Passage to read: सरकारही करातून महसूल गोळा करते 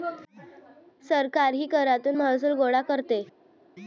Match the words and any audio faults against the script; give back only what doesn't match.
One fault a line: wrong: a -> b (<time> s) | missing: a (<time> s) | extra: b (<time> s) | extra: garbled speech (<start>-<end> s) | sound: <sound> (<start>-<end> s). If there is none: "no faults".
no faults